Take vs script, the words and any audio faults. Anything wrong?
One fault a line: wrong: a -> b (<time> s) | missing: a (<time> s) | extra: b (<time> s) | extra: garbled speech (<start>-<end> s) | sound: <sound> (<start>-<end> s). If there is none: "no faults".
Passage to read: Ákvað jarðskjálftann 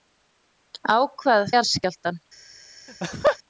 sound: laugh (2.9-3.4 s)